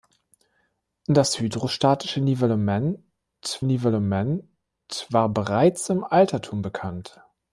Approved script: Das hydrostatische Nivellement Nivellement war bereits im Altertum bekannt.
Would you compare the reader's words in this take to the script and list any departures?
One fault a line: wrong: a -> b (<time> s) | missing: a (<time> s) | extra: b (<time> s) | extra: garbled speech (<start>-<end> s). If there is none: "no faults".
no faults